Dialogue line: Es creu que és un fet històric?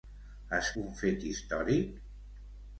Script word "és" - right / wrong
wrong